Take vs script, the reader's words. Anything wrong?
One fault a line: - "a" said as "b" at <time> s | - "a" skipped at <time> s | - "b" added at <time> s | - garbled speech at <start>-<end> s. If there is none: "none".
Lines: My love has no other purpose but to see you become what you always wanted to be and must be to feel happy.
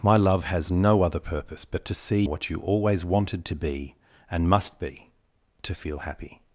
- "you become" skipped at 2.2 s